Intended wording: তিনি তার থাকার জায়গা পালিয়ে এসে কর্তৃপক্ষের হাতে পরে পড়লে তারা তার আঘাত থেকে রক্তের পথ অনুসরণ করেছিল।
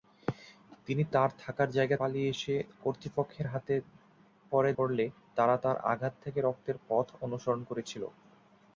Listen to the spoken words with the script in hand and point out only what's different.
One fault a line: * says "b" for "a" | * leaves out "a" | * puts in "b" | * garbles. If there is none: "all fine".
all fine